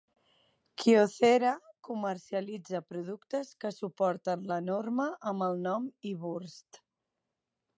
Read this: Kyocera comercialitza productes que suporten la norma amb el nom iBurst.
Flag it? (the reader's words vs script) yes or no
no